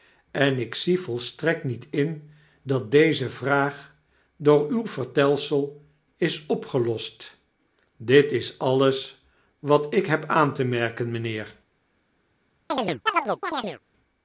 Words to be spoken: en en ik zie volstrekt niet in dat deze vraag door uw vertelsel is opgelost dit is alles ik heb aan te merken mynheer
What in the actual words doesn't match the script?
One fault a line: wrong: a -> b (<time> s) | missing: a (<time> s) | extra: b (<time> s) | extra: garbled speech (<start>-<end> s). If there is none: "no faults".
missing: en (0.6 s)
extra: wat (9.6 s)